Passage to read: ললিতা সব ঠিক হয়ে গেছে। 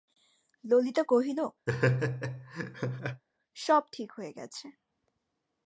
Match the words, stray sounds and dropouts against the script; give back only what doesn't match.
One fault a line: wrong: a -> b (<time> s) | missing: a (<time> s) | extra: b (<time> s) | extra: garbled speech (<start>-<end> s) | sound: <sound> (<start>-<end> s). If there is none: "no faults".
extra: কহিল (1.0 s)
sound: laugh (1.7-3.2 s)